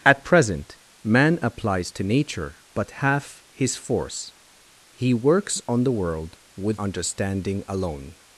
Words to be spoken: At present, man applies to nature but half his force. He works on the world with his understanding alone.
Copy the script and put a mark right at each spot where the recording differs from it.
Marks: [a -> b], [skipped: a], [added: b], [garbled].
At present, man applies to nature but half his force. He works on the world with [skipped: his] understanding alone.